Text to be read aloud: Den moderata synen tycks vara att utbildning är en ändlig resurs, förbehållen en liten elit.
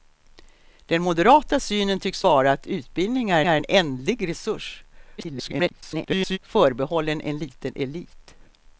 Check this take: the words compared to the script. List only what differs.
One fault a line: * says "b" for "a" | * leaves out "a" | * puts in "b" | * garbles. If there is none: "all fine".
* puts in "är"
* garbles